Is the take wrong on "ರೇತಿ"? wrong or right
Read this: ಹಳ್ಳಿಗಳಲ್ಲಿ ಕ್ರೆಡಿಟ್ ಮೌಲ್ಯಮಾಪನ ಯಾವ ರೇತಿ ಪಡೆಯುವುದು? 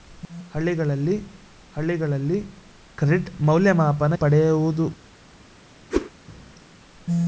wrong